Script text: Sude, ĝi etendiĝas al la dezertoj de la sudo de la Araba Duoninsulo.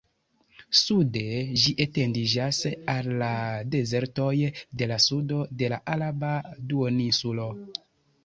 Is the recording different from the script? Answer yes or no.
no